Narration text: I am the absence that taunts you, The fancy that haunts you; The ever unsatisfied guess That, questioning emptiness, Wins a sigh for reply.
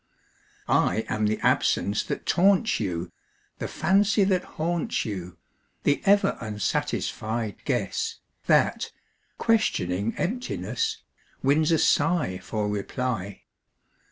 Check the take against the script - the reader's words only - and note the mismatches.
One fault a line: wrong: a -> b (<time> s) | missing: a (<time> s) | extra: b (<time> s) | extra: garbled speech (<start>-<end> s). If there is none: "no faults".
no faults